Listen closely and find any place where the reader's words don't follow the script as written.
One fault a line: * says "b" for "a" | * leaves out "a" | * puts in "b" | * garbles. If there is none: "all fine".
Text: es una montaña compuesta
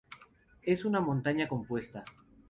all fine